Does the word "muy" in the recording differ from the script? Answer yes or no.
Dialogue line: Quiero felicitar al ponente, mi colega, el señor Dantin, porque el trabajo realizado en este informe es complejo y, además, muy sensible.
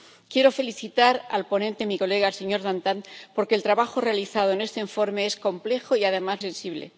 yes